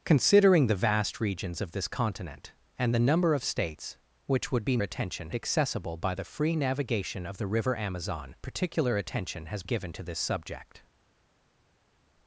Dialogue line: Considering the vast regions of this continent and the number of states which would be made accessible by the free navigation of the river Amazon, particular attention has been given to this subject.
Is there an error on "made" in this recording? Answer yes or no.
yes